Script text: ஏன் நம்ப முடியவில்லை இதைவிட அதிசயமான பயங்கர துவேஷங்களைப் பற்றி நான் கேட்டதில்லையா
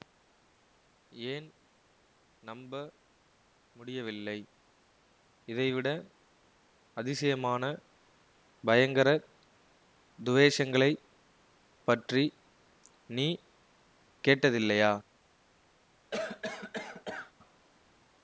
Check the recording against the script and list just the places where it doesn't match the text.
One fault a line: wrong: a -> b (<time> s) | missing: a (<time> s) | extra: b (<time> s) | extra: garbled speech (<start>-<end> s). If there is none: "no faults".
wrong: நான் -> நீ (13.1 s)